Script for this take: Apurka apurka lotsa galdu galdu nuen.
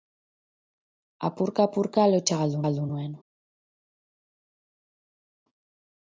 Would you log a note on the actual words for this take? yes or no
no